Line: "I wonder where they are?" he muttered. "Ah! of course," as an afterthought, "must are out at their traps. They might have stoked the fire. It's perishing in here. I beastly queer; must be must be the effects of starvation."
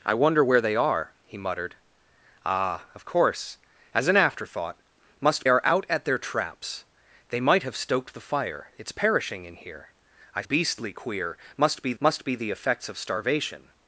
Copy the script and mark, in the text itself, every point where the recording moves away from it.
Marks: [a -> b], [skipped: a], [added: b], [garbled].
"I wonder where they are?" he muttered. "Ah! of course," as an afterthought, "must are out at their traps. They might have stoked the fire. It's perishing in here. I beastly queer; must be must be the effects of starvation."